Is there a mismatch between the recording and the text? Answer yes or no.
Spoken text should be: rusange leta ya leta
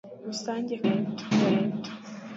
no